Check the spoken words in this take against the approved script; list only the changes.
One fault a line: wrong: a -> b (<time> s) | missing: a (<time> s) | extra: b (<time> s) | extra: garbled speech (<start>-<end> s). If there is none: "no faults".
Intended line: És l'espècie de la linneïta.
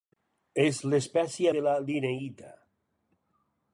no faults